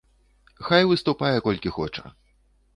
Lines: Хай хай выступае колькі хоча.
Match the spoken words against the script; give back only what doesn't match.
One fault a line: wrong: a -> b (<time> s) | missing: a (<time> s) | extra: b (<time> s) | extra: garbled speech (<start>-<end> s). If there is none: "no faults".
missing: хай (0.9 s)